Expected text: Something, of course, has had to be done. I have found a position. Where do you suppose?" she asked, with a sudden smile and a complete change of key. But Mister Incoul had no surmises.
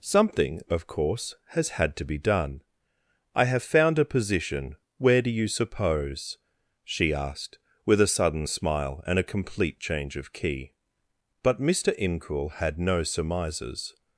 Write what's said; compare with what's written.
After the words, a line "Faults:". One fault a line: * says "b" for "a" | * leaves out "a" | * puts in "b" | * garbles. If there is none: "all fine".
Something, of course, has had to be done. I have found a position. Where do you suppose?" she asked, with a sudden smile and a complete change of key. But Mister Incoul had no surmises.
Faults:
all fine